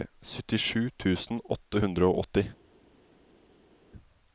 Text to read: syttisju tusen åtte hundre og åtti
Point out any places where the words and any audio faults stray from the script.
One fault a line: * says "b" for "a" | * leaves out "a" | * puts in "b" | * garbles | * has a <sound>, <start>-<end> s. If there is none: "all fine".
all fine